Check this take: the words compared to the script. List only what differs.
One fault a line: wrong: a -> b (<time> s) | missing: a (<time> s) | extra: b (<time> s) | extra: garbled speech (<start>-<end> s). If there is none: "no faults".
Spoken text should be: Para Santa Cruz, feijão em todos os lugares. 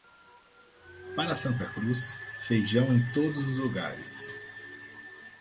no faults